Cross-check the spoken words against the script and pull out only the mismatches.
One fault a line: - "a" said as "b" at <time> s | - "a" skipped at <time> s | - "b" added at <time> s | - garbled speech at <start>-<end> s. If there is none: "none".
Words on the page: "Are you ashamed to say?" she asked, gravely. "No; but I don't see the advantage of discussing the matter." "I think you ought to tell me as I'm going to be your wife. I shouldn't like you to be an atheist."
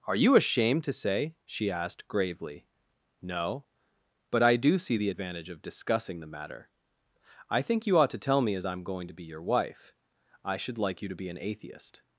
- "don't" said as "do" at 4.5 s
- "shouldn't" said as "should" at 10.6 s